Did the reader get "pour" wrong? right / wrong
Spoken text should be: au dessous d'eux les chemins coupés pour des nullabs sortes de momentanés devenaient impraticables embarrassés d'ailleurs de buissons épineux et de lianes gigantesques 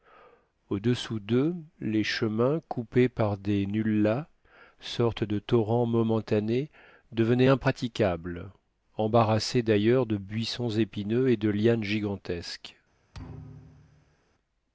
wrong